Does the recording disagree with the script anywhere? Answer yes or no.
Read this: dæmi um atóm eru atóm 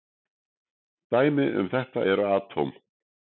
yes